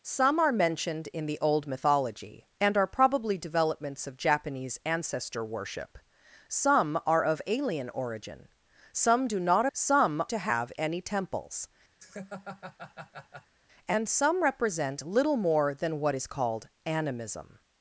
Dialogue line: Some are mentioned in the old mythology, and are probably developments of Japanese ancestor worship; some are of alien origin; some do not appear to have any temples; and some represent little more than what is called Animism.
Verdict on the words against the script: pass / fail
fail